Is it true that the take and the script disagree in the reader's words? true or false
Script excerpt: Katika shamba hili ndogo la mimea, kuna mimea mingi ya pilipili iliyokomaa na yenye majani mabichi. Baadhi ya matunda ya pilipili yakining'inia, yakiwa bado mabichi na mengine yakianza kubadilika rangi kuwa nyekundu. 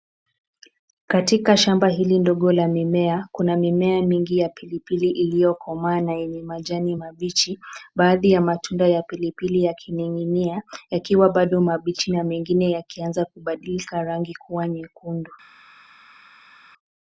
false